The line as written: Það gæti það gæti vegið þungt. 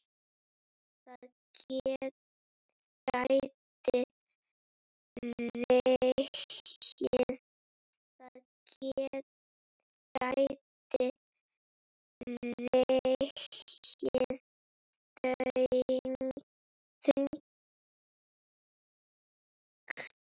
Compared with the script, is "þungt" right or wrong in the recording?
right